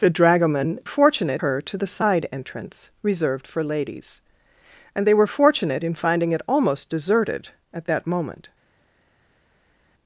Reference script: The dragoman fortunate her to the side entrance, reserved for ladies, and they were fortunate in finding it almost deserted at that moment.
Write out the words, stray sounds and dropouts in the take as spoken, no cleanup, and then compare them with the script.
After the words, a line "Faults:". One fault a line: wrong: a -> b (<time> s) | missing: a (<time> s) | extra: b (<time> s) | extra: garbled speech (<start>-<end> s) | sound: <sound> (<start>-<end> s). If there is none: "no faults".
The dragoman fortunate her to the side entrance, reserved for ladies, and they were fortunate in finding it almost deserted at that moment.
Faults:
no faults